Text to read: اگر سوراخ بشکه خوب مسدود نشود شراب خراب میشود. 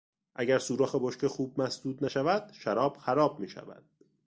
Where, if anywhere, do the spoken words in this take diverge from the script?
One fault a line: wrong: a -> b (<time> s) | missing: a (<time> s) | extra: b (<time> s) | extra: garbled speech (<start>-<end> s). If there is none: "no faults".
no faults